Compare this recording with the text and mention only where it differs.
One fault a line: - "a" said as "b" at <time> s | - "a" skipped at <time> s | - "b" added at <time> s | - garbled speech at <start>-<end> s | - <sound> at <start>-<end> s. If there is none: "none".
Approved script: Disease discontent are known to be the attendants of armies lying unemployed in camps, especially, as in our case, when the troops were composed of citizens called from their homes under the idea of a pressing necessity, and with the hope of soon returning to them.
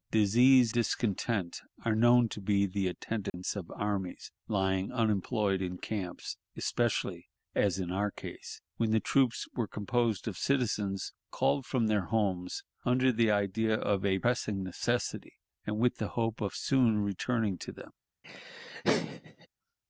- dropout at 3.3-3.3 s
- laugh at 18.2-19.5 s